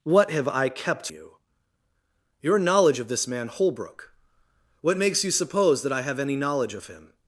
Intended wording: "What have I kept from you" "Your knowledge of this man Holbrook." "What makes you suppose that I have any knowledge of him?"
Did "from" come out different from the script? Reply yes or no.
yes